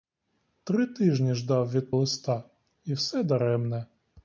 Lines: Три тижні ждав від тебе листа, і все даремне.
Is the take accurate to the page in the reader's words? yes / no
no